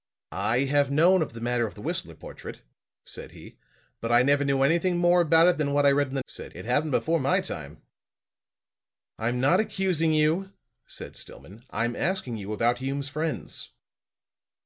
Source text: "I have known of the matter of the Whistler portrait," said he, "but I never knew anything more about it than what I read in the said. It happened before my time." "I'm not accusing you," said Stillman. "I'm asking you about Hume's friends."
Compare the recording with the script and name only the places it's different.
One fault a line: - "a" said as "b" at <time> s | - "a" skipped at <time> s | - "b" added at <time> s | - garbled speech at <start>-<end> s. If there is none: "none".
none